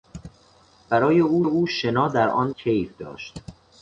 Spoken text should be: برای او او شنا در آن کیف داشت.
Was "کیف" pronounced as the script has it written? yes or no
yes